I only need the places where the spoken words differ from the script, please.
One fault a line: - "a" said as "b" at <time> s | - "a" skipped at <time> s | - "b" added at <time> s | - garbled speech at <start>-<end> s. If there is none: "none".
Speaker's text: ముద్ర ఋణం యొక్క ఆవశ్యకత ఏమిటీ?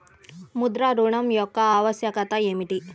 none